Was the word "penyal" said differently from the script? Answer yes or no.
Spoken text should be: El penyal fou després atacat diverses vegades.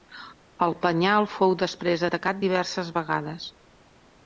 no